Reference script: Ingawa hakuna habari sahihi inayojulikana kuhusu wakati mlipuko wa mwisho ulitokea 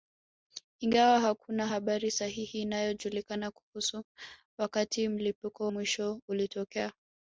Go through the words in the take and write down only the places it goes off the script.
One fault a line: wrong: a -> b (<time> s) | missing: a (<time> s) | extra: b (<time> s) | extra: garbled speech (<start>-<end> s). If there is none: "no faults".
missing: wa (5.7 s)